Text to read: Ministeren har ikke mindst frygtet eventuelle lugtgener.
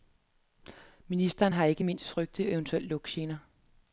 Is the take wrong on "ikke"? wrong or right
right